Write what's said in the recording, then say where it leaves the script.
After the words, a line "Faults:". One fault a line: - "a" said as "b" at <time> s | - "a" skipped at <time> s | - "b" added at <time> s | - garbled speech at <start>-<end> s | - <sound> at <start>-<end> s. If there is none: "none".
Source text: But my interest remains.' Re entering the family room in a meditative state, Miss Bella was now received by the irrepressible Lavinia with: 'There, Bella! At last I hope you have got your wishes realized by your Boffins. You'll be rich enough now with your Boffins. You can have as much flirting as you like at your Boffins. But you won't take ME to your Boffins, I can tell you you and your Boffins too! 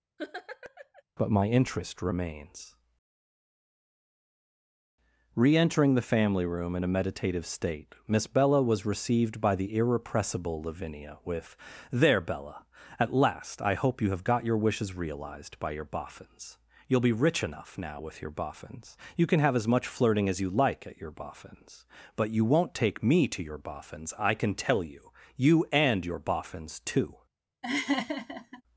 But my interest remains.' Re entering the family room in a meditative state, Miss Bella was received by the irrepressible Lavinia with: 'There, Bella! At last I hope you have got your wishes realized by your Boffins. You'll be rich enough now with your Boffins. You can have as much flirting as you like at your Boffins. But you won't take ME to your Boffins, I can tell you you and your Boffins too!
Faults:
- laugh at 0.2-1.0 s
- "now" skipped at 8.9 s
- laugh at 27.6-28.6 s